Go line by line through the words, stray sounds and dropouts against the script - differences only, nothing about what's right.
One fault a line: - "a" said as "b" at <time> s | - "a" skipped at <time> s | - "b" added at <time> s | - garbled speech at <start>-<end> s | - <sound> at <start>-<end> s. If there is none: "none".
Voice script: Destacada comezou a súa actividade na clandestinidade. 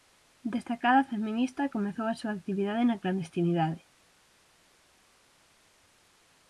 - "feminista" added at 1.1 s